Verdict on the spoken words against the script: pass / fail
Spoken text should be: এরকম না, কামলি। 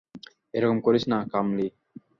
fail